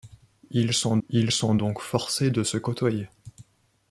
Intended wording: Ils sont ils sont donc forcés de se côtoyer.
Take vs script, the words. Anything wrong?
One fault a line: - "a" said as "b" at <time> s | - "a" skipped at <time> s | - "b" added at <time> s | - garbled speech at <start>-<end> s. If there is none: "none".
none